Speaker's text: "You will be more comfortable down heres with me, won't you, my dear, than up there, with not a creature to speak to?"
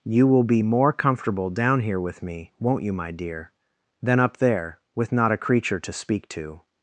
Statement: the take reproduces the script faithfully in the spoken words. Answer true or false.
false